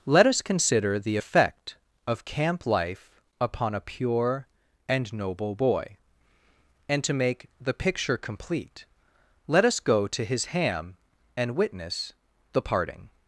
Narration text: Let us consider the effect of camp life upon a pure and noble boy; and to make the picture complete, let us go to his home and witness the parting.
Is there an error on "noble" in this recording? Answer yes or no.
no